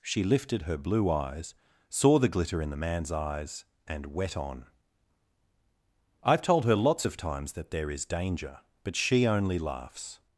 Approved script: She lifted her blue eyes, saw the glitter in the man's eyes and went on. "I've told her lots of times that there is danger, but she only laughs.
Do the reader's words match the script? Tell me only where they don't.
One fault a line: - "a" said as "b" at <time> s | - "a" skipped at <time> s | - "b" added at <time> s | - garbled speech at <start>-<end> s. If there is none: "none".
- "went" said as "wet" at 4.1 s